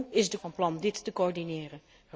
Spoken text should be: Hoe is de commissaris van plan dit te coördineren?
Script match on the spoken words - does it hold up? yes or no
no